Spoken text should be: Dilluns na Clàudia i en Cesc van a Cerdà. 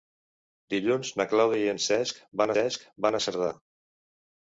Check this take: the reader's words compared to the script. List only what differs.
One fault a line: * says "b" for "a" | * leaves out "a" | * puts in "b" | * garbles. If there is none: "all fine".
* puts in "Cesc van"